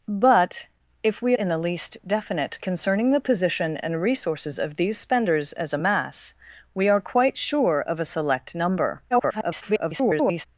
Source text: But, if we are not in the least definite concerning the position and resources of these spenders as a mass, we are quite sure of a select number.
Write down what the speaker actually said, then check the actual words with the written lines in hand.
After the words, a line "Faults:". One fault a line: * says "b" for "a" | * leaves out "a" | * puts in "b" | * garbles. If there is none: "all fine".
But, if we in the least definite concerning the position and resources of these spenders as a mass, we are quite sure of a select number. [garbled]
Faults:
* leaves out "are not"
* garbles